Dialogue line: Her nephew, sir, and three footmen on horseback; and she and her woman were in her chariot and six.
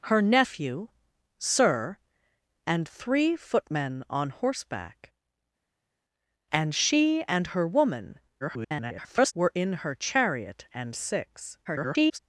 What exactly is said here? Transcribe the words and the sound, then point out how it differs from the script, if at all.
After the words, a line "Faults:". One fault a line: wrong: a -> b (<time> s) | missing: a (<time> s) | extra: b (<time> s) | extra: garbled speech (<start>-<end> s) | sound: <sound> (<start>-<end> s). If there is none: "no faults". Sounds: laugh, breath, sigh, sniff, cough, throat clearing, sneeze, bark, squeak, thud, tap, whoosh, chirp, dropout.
Her nephew, sir, and three footmen on horseback; and she and her woman [garbled] were in her chariot and six. [garbled]
Faults:
extra: garbled speech (8.4-9.3 s)
extra: garbled speech (11.6-12.2 s)